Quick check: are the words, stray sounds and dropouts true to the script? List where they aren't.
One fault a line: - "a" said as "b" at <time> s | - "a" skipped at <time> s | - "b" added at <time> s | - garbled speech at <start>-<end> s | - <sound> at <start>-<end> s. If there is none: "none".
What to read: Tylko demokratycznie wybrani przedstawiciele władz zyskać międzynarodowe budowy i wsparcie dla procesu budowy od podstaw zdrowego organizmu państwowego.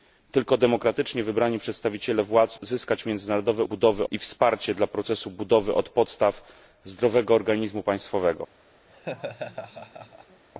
- laugh at 8.9-10.4 s